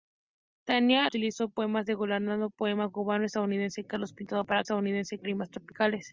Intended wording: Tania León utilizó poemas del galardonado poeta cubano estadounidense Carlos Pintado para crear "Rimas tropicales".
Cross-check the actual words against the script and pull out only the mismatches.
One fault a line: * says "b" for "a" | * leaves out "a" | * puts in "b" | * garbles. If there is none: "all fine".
* leaves out "León"
* says "estadounidense" for "crear"